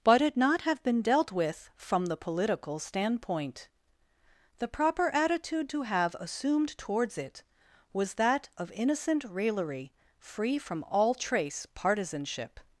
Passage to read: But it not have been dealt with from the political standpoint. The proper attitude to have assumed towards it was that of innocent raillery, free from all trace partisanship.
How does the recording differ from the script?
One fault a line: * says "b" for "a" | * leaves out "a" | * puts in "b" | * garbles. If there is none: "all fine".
all fine